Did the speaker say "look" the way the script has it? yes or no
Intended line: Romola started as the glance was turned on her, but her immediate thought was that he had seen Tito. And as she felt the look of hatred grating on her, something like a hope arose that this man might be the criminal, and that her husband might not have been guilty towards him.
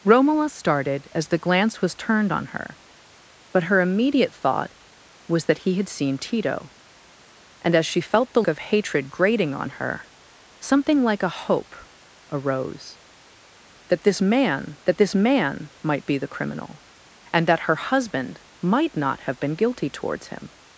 no